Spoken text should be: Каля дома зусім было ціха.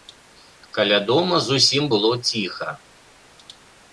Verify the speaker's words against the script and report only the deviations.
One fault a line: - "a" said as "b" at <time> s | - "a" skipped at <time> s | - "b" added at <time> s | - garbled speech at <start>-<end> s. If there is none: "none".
none